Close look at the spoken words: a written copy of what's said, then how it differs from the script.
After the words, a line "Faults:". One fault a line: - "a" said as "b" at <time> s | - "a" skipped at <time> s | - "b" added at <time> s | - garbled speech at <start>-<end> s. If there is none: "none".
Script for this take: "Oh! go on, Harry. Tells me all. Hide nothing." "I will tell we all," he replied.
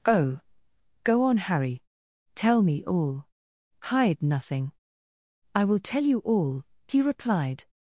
"Oh! go on, Harry. Tell me all. Hide nothing." "I will tell you all," he replied.
Faults:
- "Tells" said as "Tell" at 2.4 s
- "we" said as "you" at 6.0 s